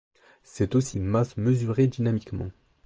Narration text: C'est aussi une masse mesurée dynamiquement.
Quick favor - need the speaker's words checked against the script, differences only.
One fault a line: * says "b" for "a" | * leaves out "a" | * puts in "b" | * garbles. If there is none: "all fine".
all fine